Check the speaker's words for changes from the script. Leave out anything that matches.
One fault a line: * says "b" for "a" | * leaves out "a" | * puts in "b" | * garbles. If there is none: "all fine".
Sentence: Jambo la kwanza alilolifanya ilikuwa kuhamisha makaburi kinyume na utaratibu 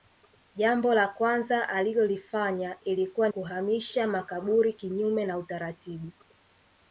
all fine